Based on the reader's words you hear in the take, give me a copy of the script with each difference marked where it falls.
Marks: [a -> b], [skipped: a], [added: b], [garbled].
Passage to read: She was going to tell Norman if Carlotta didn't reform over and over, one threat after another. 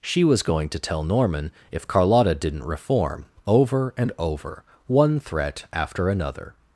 She was going to tell Norman if Carlotta didn't reform over and over, one threat after another.